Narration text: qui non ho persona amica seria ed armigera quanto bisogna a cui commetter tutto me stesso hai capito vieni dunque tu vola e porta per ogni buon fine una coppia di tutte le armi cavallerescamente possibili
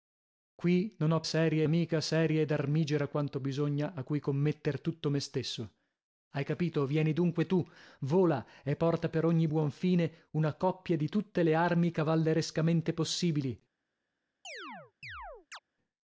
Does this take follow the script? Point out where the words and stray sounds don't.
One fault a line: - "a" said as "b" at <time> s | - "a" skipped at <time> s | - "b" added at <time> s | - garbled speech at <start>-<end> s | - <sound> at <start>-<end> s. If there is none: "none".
- "persona" said as "seria" at 1.2 s
- chirp at 14.4-15.6 s